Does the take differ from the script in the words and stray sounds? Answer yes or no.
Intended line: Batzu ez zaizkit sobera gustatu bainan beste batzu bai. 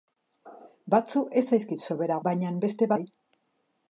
yes